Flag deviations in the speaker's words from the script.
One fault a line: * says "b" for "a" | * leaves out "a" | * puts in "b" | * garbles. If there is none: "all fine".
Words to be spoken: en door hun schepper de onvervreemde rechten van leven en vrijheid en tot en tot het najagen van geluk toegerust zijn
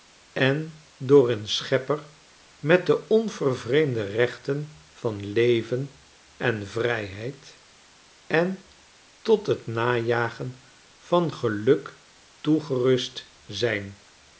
* puts in "met"
* leaves out "en tot"